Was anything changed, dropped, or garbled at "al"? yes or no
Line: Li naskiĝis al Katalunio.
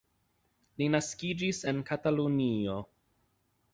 yes